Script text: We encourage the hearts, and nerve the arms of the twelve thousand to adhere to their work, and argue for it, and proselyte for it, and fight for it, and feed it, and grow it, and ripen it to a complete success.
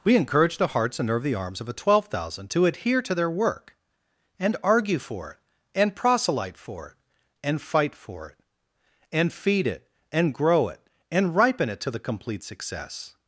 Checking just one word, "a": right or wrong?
wrong